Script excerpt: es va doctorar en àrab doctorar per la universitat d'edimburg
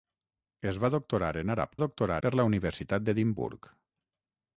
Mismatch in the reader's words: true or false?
false